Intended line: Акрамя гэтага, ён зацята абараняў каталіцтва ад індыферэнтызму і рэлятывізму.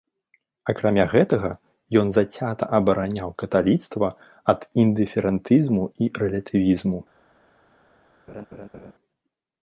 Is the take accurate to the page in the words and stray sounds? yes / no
no